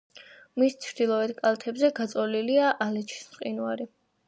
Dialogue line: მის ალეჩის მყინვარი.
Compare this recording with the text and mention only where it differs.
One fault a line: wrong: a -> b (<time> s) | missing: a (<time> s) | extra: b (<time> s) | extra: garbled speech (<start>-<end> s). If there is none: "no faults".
extra: ჩრდილოეთ კალთებზე გაწოლილია (0.8 s)